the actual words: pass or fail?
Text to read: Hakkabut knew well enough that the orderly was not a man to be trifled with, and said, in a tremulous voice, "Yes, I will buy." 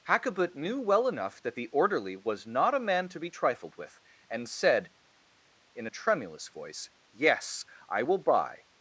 pass